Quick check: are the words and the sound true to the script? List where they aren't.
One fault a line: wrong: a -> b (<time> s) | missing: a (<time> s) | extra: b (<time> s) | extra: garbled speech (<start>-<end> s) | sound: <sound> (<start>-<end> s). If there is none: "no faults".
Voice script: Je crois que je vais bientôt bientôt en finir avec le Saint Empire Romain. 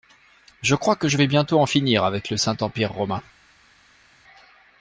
missing: bientôt (1.6 s)